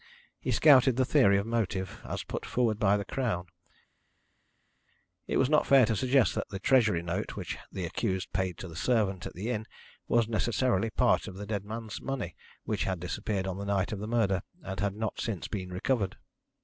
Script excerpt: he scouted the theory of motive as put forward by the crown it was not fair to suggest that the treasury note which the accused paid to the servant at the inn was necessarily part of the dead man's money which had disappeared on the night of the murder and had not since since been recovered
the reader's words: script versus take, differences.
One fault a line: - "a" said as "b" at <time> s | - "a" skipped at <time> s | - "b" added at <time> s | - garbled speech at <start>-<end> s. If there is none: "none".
- "since" skipped at 15.5 s